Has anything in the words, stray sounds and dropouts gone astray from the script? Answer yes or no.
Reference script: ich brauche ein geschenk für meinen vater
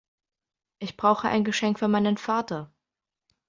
no